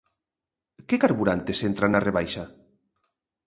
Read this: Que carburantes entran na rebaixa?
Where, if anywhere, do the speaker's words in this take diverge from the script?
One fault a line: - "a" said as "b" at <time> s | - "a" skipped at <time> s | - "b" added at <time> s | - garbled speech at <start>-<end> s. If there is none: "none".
none